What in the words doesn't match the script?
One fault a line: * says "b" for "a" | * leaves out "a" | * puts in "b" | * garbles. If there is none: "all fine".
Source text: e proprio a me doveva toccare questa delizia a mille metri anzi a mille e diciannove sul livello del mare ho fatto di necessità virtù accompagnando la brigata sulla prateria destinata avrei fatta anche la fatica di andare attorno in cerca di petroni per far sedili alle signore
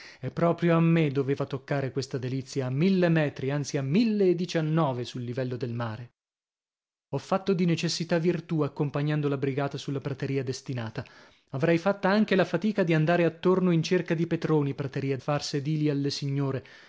* says "prateria" for "per"